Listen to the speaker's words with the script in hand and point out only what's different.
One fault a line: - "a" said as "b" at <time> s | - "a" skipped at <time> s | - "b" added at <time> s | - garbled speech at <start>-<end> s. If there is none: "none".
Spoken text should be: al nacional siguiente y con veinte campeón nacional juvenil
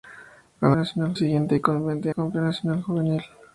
none